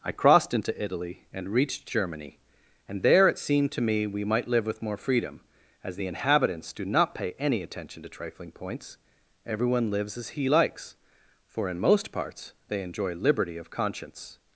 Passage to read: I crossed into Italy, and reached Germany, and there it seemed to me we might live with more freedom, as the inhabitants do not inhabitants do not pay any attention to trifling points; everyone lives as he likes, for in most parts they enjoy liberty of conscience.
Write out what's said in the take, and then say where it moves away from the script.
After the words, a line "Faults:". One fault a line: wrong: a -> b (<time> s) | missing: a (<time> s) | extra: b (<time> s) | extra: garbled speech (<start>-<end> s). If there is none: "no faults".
I crossed into Italy, and reached Germany, and there it seemed to me we might live with more freedom, as the inhabitants do not pay any attention to trifling points; everyone lives as he likes, for in most parts they enjoy liberty of conscience.
Faults:
missing: inhabitants do not (7.1 s)